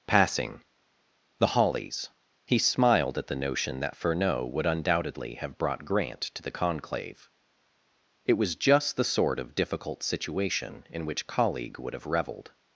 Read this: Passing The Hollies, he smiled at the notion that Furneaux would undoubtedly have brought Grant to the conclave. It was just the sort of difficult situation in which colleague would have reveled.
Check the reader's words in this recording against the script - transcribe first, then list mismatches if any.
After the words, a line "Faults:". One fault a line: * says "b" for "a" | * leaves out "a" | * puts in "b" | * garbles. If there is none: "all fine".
Passing The Hollies, he smiled at the notion that Furneaux would undoubtedly have brought Grant to the conclave. It was just the sort of difficult situation in which colleague would have reveled.
Faults:
all fine